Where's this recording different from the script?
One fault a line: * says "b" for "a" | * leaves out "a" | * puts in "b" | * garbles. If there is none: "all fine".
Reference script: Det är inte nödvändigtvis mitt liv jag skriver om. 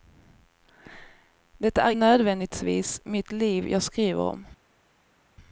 * leaves out "inte"